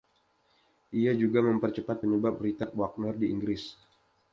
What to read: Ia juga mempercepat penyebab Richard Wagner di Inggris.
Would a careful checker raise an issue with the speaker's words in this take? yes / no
no